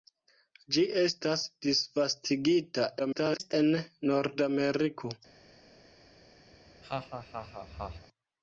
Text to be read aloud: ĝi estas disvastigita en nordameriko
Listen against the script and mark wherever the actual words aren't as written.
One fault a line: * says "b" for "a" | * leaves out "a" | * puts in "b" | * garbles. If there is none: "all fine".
* garbles